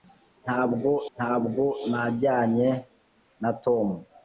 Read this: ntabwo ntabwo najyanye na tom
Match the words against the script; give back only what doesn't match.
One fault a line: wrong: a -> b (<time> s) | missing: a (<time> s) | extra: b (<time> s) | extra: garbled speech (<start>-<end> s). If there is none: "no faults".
no faults